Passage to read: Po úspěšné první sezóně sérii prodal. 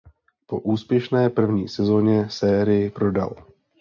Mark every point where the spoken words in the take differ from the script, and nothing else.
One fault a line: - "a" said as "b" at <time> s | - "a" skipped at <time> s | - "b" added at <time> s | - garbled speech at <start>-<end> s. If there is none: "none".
none